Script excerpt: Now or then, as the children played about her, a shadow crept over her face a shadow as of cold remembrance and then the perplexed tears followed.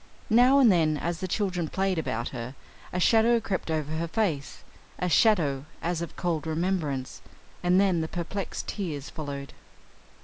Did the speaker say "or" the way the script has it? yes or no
no